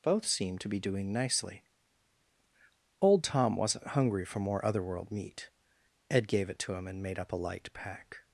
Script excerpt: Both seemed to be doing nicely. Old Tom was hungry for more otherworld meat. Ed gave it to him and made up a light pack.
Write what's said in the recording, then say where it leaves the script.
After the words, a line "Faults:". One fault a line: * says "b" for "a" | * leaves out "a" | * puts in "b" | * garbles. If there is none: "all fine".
Both seemed to be doing nicely. Old Tom wasn't hungry for more otherworld meat. Ed gave it to him and made up a light pack.
Faults:
* says "wasn't" for "was"